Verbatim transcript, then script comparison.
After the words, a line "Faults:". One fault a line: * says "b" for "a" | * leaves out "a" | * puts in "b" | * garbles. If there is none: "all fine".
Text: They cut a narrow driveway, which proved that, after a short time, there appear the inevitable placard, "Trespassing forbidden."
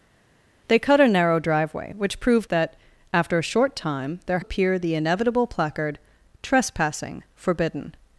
They cut a narrow driveway, which proved that, after a short time, there appear the inevitable placard, "Trespassing forbidden."
Faults:
all fine